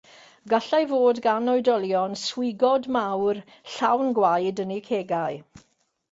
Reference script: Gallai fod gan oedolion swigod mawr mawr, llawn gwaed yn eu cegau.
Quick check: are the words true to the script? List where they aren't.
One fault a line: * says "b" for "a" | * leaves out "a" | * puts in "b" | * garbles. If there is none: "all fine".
* leaves out "mawr"